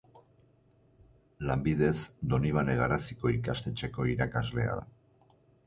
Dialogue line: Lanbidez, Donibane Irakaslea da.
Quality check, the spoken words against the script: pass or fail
fail